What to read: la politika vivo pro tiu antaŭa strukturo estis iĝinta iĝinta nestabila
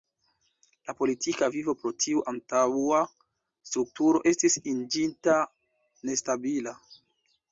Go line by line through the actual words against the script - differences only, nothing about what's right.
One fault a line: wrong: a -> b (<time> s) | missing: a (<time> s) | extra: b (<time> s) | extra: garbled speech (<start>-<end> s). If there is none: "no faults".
missing: iĝinta (5.4 s)